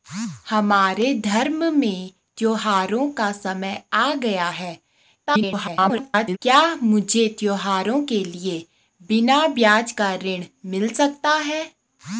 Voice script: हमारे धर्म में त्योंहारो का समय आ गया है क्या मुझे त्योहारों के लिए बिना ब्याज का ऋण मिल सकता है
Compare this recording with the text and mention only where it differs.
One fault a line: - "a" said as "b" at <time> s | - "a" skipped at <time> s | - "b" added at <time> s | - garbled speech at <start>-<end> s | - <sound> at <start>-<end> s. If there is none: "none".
- garbled speech at 5.3-6.4 s